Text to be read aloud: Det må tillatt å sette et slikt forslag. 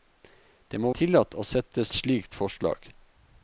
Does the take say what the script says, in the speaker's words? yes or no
yes